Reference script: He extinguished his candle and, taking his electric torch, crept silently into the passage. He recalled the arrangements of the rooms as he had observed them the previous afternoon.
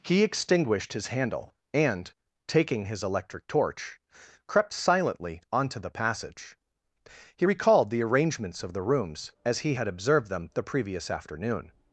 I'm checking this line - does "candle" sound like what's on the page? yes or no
no